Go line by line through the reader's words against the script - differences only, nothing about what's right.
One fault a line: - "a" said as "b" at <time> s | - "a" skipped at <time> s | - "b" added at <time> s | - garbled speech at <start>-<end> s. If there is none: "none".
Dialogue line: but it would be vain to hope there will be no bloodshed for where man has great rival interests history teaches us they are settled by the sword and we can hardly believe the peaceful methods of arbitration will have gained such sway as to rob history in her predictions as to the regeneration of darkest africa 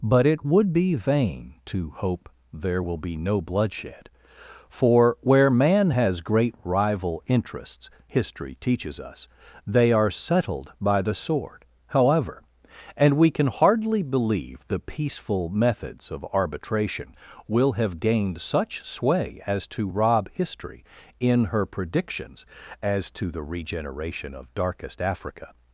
- "however" added at 11.9 s